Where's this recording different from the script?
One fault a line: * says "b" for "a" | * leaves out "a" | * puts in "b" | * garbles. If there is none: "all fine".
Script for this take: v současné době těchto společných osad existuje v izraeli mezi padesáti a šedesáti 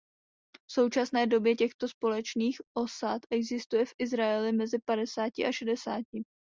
all fine